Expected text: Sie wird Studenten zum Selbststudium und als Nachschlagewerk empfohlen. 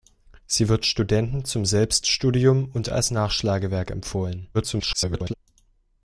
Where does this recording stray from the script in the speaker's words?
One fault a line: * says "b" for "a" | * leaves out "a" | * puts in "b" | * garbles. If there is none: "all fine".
* garbles